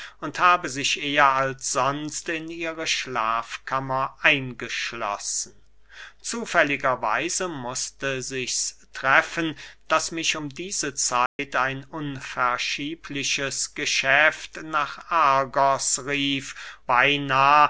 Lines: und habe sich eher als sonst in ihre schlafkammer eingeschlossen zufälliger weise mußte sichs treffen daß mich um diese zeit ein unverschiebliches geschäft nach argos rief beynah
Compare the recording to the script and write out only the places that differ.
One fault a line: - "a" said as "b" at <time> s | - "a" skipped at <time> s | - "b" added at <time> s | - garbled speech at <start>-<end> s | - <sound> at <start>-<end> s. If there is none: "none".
- dropout at 11.3-11.4 s